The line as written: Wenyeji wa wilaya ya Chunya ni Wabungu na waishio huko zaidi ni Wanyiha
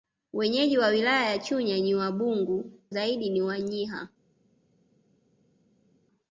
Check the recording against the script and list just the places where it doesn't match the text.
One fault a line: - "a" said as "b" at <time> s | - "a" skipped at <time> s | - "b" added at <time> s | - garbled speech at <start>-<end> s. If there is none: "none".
- "na waishio huko" skipped at 2.7 s